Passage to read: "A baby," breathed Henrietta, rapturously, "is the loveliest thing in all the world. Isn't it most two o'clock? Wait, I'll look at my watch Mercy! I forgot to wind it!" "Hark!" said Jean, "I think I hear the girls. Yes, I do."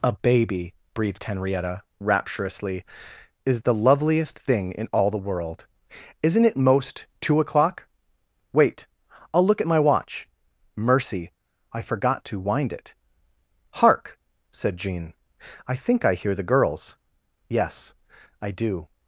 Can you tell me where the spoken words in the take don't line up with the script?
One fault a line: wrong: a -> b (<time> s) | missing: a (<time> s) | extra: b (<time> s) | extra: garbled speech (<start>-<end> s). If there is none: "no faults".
no faults